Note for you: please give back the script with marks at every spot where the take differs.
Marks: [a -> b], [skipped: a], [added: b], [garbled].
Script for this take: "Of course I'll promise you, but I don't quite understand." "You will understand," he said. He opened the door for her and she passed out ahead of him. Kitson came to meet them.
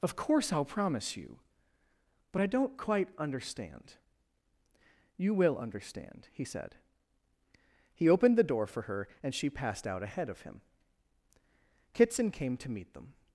"Of course I'll promise you, but I don't quite understand." "You will understand," he said. He opened the door for her and she passed out ahead of him. Kitson came to meet them.